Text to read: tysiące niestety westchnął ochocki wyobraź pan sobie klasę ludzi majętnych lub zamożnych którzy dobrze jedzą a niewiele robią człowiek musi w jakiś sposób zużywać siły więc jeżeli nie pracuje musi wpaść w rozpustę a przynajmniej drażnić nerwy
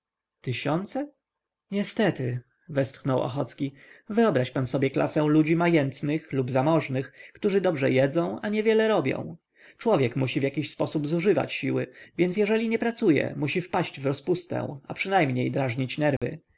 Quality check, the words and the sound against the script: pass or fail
fail